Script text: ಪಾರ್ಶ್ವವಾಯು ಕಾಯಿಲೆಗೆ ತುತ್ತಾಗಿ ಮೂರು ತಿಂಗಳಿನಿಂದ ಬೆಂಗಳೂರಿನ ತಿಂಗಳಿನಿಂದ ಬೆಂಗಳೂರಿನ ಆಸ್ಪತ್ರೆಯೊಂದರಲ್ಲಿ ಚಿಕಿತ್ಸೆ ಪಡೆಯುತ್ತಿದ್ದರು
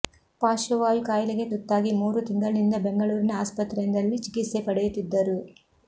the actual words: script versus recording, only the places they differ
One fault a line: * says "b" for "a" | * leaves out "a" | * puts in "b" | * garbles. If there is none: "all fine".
* leaves out "ತಿಂಗಳಿನಿಂದ ಬೆಂಗಳೂರಿನ"